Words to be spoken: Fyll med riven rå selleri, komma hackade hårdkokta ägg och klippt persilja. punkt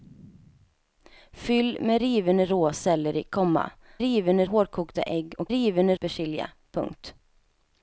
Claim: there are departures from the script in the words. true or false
true